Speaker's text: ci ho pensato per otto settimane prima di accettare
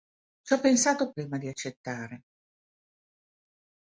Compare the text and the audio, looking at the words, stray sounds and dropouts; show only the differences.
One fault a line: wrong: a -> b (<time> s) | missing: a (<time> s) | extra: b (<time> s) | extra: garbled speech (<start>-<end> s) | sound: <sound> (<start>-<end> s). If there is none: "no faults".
missing: per otto settimane (1.1 s)